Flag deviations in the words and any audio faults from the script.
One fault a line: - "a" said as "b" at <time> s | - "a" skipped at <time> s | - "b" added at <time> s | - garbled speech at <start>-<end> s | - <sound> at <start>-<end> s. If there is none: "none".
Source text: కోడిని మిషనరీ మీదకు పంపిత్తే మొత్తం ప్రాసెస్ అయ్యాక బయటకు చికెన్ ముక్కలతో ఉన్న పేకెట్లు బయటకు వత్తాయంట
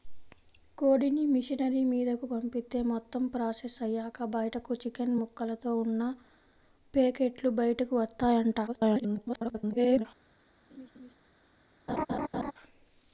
- garbled speech at 8.7-10.1 s
- laugh at 10.7-11.1 s
- laugh at 11.9-12.5 s